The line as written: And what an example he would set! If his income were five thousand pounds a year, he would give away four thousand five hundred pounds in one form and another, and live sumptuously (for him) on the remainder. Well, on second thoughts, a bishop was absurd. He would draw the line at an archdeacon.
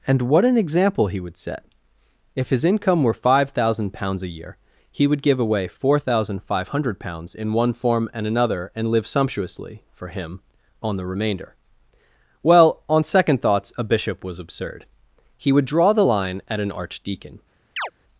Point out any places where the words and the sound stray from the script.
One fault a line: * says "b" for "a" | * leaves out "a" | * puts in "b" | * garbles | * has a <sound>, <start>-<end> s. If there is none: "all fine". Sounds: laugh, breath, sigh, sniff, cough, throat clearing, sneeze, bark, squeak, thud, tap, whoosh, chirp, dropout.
* has a chirp, 17.8-17.9 s